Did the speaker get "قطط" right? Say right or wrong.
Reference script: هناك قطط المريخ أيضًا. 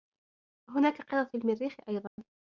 right